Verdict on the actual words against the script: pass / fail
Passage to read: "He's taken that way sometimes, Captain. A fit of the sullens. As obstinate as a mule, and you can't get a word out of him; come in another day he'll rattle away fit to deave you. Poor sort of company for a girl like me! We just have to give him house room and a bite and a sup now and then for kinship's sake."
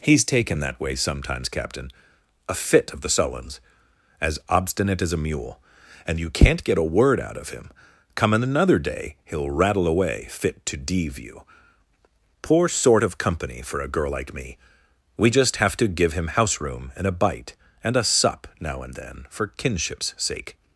pass